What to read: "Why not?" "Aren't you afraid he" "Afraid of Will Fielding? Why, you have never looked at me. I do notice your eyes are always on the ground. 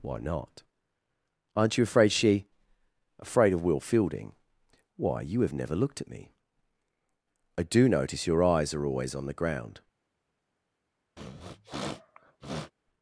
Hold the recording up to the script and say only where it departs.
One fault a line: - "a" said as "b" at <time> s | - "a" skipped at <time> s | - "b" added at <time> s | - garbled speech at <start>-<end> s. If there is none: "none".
- "he" said as "she" at 2.1 s